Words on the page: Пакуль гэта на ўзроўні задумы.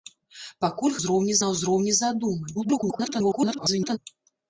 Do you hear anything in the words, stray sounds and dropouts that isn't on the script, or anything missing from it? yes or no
yes